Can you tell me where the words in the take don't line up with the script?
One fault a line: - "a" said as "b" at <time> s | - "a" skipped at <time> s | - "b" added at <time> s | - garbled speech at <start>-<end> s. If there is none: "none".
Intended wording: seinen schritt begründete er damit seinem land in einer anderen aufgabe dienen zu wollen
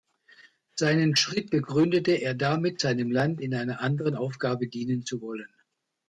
none